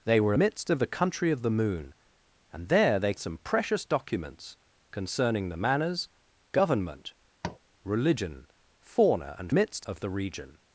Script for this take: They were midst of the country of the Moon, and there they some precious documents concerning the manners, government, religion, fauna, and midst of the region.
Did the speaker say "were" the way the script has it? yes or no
yes